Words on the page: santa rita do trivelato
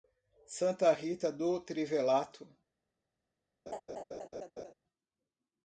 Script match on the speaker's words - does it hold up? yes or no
yes